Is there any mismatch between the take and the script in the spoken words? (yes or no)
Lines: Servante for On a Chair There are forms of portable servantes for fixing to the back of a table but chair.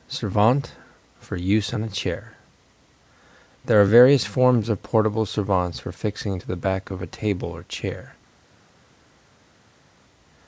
yes